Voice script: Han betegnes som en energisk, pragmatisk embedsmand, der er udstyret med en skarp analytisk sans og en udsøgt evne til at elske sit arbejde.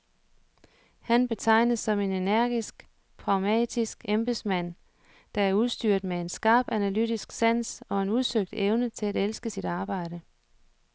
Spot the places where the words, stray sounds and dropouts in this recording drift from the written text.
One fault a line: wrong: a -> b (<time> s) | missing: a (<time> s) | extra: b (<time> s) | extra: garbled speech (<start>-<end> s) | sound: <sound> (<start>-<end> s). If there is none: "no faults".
no faults